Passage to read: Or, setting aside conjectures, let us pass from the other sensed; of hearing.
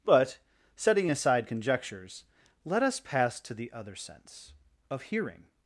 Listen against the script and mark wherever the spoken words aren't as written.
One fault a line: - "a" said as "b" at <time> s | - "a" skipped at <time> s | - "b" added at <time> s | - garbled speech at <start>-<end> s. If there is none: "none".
- "Or" said as "But" at 0.0 s
- "from" said as "to" at 3.4 s
- "sensed" said as "sense" at 3.9 s